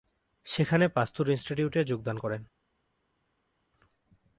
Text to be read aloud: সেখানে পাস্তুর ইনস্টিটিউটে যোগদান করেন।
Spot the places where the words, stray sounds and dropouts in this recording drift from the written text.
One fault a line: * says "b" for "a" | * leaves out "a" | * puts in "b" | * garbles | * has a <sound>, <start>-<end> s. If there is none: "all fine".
all fine